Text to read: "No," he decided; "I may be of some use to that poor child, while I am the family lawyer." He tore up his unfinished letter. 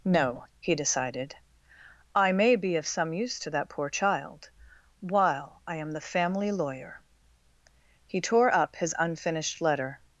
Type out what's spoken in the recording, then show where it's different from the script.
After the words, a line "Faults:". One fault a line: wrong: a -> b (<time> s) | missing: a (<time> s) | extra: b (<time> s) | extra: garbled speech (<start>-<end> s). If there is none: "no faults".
"No," he decided; "I may be of some use to that poor child, while I am the family lawyer." He tore up his unfinished letter.
Faults:
no faults